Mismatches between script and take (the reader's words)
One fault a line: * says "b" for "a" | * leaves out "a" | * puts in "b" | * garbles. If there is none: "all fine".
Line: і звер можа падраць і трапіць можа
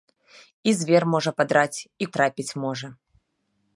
all fine